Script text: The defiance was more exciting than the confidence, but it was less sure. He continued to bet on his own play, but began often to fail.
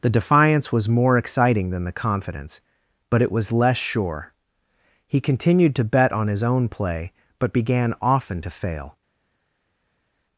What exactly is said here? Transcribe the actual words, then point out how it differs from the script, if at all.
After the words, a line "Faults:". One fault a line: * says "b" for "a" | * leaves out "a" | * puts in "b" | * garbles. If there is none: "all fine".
The defiance was more exciting than the confidence, but it was less sure. He continued to bet on his own play, but began often to fail.
Faults:
all fine